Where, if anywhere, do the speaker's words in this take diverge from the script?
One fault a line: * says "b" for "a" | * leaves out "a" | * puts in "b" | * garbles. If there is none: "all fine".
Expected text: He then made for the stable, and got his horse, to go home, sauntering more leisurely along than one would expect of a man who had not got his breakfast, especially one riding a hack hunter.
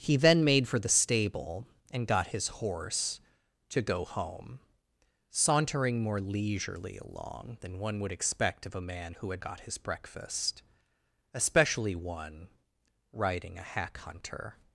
* leaves out "not"